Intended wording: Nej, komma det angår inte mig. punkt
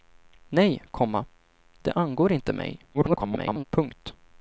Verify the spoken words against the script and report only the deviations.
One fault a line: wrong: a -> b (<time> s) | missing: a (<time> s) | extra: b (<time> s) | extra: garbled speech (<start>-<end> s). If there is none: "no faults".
extra: garbled speech (2.9-3.6 s)